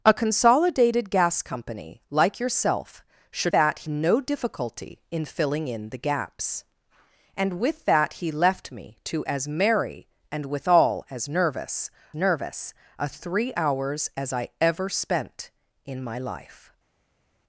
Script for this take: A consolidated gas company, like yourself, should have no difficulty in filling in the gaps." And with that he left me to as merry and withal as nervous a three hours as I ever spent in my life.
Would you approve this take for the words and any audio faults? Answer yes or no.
no